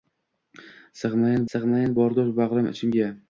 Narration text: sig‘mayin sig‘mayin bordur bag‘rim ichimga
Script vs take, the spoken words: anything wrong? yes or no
no